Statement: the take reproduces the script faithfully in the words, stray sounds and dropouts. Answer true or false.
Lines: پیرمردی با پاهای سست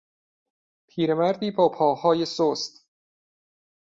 true